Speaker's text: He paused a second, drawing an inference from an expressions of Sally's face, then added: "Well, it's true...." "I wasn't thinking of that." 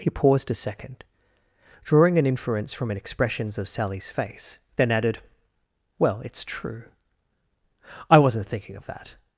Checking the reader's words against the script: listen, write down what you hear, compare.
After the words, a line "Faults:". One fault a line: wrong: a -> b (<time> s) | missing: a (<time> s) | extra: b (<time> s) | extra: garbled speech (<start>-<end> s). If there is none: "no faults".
He paused a second, drawing an inference from an expressions of Sally's face, then added: "Well, it's true...." "I wasn't thinking of that."
Faults:
no faults